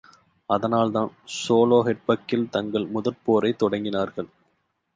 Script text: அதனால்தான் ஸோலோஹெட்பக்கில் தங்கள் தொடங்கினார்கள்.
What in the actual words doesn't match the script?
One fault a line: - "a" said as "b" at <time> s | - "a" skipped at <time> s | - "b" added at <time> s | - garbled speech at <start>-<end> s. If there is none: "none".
- "முதற்போரைத்" added at 2.9 s